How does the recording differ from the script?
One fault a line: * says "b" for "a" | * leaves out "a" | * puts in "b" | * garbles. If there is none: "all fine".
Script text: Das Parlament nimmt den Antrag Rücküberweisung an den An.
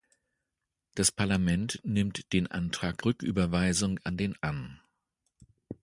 all fine